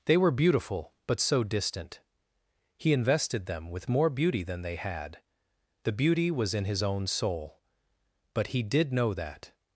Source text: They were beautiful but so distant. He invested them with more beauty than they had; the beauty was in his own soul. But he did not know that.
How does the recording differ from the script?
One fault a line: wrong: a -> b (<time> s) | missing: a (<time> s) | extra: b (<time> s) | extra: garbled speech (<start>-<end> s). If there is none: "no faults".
missing: not (8.9 s)